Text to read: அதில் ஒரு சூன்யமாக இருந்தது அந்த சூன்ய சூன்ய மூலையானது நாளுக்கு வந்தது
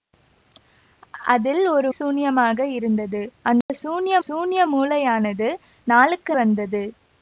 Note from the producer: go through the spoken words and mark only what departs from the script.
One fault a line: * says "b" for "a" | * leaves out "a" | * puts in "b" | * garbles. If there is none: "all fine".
all fine